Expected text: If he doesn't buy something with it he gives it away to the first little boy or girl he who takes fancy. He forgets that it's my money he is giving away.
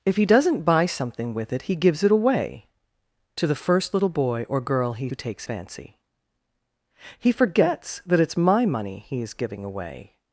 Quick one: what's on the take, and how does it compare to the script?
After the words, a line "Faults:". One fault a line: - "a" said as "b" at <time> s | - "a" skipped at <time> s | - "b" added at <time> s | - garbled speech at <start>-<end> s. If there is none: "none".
If he doesn't buy something with it he gives it away to the first little boy or girl he who takes fancy. He forgets that it's my money he is giving away.
Faults:
none